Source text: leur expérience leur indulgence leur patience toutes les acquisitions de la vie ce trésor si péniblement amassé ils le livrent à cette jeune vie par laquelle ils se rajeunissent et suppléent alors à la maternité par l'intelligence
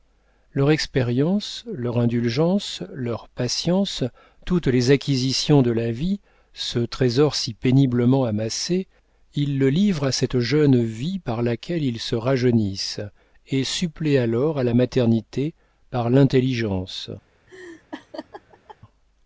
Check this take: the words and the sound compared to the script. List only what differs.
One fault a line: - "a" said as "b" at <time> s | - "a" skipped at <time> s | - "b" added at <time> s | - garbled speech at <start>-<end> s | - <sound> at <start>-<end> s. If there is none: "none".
- laugh at 17.5-18.8 s